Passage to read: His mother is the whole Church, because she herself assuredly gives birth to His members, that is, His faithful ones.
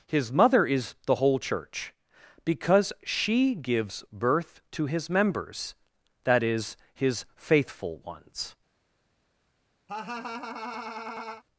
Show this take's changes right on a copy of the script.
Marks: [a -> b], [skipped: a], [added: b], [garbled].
His mother is the whole Church, because she [skipped: herself assuredly] gives birth to His members, that is, His faithful ones.